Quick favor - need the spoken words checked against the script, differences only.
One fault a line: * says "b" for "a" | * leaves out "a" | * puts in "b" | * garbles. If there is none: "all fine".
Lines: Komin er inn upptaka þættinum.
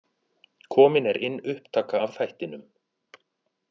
* puts in "af"